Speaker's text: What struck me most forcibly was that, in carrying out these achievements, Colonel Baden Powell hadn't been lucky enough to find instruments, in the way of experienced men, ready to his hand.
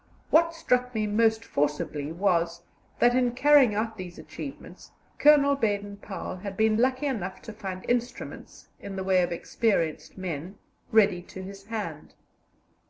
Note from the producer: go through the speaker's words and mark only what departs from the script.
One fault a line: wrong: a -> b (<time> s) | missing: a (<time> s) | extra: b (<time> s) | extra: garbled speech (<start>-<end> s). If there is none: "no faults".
wrong: hadn't -> had (6.4 s)